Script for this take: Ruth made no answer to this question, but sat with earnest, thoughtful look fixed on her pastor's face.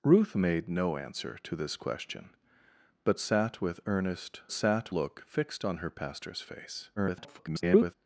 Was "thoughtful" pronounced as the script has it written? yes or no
no